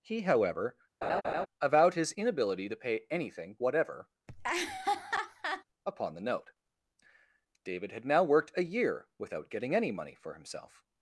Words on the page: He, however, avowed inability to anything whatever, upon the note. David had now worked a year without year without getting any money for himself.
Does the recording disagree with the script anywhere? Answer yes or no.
yes